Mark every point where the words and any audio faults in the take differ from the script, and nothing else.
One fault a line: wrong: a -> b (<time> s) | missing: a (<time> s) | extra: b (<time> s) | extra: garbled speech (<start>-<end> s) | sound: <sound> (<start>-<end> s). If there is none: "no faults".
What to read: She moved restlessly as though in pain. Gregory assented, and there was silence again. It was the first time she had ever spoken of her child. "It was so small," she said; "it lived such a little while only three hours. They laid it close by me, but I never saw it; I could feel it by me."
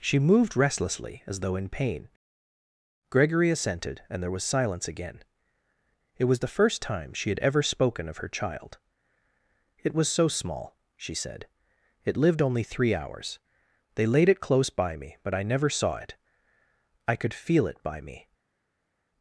missing: such a little while (12.4 s)